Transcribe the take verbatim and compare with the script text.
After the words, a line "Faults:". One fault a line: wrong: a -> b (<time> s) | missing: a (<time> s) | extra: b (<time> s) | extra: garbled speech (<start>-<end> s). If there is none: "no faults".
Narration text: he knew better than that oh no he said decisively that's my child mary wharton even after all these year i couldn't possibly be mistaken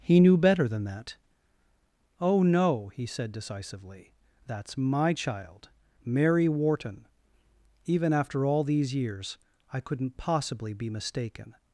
he knew better than that oh no he said decisively that's my child mary wharton even after all these years i couldn't possibly be mistaken
Faults:
wrong: year -> years (8.9 s)